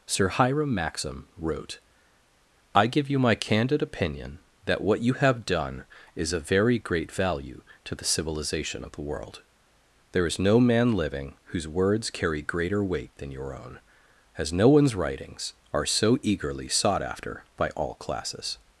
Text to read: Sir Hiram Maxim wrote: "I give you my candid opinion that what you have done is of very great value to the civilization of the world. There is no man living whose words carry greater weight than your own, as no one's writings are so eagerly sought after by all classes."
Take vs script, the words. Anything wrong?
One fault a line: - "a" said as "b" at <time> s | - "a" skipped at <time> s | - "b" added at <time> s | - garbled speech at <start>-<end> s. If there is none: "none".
none